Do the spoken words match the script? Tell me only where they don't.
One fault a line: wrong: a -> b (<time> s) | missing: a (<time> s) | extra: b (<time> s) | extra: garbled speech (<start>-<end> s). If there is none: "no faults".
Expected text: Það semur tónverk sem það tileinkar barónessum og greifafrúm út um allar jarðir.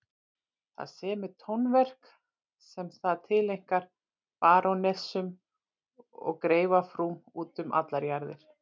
no faults